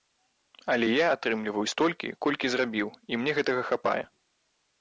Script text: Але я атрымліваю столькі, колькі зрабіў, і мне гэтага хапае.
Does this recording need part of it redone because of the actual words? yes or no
no